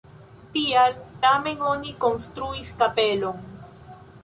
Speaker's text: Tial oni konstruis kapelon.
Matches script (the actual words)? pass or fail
fail